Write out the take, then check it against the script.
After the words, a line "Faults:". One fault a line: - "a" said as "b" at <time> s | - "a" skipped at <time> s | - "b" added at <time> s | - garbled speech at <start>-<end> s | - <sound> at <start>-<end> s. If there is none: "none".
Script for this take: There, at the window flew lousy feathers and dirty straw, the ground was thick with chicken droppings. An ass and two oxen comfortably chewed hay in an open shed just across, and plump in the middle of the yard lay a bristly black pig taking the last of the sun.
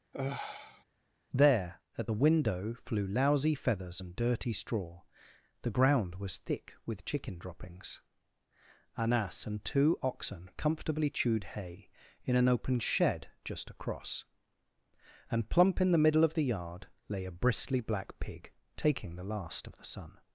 There, at the window flew lousy feathers and dirty straw, the ground was thick with chicken droppings. An ass and two oxen comfortably chewed hay in an open shed just across, and plump in the middle of the yard lay a bristly black pig taking the last of the sun.
Faults:
- sigh at 0.1-0.8 s